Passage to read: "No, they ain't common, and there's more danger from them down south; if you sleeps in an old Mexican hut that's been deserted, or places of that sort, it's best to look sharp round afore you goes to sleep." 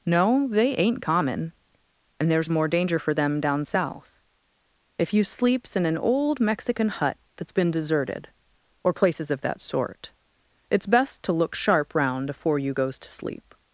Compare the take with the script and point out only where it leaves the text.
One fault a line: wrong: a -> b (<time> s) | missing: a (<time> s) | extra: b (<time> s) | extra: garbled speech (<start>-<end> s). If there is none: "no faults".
wrong: from -> for (3.0 s)